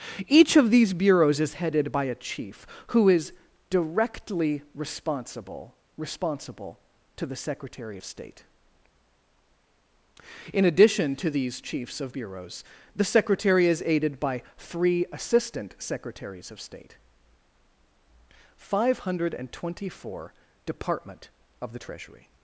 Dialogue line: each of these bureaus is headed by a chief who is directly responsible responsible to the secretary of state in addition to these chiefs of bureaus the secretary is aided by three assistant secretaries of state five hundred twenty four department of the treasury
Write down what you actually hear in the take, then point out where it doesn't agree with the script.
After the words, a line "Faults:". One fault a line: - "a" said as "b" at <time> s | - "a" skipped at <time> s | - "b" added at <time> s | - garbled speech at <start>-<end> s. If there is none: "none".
each of these bureaus is headed by a chief who is directly responsible responsible to the secretary of state in addition to these chiefs of bureaus the secretary is aided by three assistant secretaries of state five hundred twenty four department of the treasury
Faults:
none